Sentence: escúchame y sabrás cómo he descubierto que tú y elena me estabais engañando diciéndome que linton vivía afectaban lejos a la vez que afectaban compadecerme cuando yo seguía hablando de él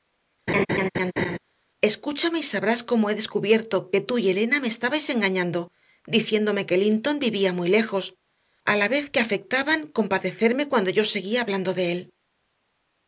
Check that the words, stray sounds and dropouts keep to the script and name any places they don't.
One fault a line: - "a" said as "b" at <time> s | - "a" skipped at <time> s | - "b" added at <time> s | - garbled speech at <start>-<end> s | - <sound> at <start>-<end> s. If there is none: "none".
- laugh at 0.5-1.4 s
- "afectaban" said as "muy" at 7.5 s